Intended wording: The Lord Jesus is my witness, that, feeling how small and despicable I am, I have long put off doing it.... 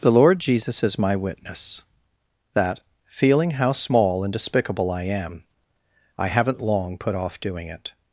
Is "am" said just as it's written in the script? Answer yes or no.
yes